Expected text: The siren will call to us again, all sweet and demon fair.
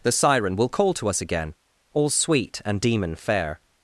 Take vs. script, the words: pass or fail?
pass